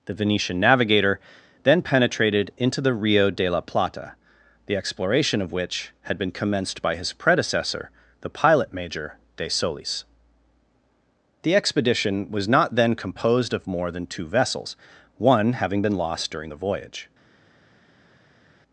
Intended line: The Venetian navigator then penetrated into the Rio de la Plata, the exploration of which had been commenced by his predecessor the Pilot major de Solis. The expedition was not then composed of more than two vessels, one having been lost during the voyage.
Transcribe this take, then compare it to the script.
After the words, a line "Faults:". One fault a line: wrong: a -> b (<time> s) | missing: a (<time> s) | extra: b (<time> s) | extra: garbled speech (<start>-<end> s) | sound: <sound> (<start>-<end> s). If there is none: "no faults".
The Venetian navigator then penetrated into the Rio de la Plata, the exploration of which had been commenced by his predecessor the Pilot major de Solis. The expedition was not then composed of more than two vessels, one having been lost during the voyage.
Faults:
no faults